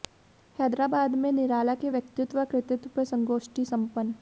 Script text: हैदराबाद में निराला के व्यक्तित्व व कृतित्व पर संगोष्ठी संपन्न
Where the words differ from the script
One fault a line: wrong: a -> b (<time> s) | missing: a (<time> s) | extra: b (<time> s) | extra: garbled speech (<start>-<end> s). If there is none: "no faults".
no faults